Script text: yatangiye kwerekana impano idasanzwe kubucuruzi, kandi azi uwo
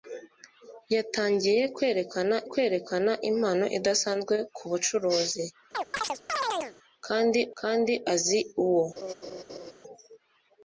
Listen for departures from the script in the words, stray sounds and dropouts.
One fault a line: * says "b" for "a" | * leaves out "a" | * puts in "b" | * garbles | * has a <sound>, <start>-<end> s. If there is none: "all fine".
* puts in "kwerekana"
* has a chirp, 5.7-6.8 s
* puts in "kandi"
* has a laugh, 9.0-9.7 s